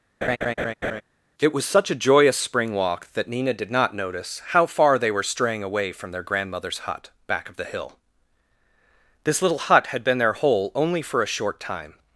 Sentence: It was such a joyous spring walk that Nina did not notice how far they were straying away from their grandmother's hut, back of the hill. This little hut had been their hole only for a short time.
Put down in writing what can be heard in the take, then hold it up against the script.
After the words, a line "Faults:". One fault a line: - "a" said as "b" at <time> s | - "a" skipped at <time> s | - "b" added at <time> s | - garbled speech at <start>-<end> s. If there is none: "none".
It was such a joyous spring walk that Nina did not notice how far they were straying away from their grandmother's hut, back of the hill. This little hut had been their hole only for a short time.
Faults:
none